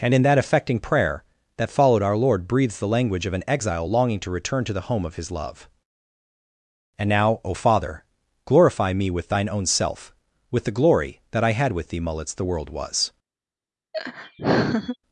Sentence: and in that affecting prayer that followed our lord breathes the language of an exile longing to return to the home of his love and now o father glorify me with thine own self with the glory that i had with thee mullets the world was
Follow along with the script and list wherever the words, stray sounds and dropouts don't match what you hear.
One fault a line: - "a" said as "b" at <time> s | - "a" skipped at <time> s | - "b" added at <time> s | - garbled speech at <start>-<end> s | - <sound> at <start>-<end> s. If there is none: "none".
- laugh at 13.9-15.0 s